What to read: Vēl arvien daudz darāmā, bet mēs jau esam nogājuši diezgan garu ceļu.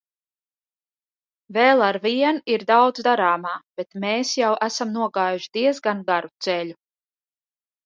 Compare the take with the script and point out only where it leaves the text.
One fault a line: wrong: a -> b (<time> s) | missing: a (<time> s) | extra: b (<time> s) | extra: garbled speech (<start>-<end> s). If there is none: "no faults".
extra: ir (2.5 s)